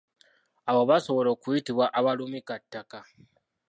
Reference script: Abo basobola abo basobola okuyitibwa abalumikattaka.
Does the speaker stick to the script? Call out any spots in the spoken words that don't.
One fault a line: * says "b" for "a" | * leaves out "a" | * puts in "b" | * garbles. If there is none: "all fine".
* leaves out "abo basobola"